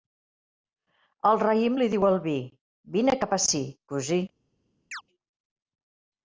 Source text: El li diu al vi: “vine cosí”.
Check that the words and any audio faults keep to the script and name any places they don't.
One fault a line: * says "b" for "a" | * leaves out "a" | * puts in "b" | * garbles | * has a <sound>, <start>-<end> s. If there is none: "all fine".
* puts in "raïm"
* puts in "cap ací"
* has a chirp, 4.9-5.0 s